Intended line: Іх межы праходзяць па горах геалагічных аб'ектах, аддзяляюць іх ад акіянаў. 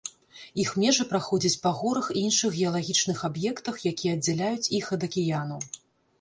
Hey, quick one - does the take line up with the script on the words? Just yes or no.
no